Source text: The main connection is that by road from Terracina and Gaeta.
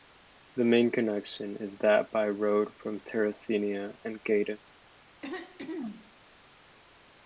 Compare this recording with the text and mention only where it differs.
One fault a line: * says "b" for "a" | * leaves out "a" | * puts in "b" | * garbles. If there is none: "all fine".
all fine